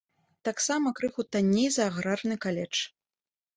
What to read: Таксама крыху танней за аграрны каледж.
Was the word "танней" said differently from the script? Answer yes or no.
no